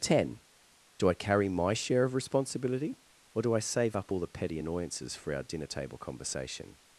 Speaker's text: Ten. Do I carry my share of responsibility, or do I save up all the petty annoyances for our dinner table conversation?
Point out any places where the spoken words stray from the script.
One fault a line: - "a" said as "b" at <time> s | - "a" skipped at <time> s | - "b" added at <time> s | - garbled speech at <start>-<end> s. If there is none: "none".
none